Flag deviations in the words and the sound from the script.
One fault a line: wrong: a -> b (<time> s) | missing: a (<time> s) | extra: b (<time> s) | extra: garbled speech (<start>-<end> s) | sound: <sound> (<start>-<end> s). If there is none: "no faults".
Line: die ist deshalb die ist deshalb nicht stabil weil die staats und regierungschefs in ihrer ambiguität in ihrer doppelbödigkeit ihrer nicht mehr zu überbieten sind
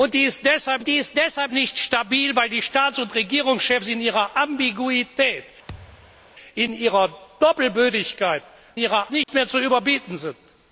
sound: thud (5.7-6.3 s)
sound: dropout (9.2-9.3 s)